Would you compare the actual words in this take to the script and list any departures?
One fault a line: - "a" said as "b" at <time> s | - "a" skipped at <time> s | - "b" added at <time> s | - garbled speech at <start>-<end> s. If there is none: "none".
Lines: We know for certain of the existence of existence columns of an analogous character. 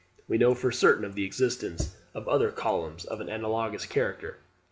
- "existence" said as "other" at 2.3 s